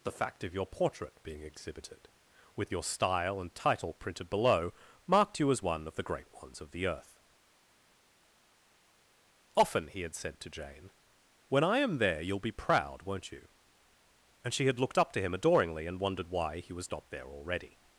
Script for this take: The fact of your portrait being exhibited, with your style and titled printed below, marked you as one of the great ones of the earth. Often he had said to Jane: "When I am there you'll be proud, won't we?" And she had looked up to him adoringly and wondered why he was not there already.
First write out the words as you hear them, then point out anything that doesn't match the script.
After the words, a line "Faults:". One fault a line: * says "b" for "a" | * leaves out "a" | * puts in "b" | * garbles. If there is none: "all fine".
The fact of your portrait being exhibited, with your style and title printed below, marked you as one of the great ones of the earth. Often he had said to Jane: "When I am there you'll be proud, won't you?" And she had looked up to him adoringly and wondered why he was not there already.
Faults:
* says "title" for "titled"
* says "you" for "we"